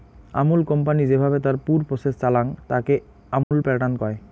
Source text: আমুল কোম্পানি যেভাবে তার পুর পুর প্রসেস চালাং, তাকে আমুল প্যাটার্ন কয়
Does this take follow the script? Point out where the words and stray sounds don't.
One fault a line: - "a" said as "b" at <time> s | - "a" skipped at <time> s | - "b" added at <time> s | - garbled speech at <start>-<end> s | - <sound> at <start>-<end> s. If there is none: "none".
- "পুর" skipped at 1.8 s
- dropout at 3.4-3.5 s